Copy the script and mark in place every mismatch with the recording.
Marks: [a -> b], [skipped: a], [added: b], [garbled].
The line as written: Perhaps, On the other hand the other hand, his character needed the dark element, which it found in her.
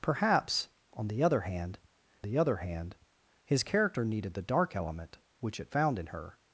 Perhaps, On the other hand the other hand, his character needed the dark element, which it found in her.